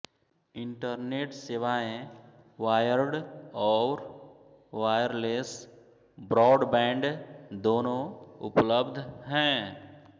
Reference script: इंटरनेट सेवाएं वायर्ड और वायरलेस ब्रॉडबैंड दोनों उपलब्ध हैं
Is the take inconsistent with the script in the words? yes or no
no